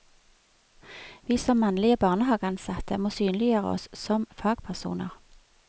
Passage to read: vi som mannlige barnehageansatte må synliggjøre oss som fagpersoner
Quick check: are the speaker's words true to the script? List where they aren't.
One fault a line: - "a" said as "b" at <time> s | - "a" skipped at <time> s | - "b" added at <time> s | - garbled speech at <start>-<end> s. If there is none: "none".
none